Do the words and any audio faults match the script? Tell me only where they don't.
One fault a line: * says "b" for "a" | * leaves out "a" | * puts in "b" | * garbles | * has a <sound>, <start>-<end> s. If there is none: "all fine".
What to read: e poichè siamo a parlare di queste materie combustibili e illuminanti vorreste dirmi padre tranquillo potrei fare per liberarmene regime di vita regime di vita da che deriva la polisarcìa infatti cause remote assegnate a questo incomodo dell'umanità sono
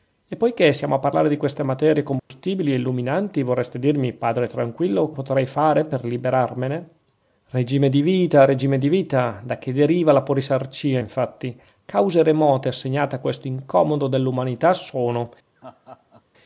* has a dropout, 2.2-2.3 s
* has a laugh, 15.6-16.2 s